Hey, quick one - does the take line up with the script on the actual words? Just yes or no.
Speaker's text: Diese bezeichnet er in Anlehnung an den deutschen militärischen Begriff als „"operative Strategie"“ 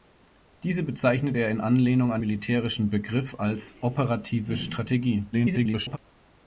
no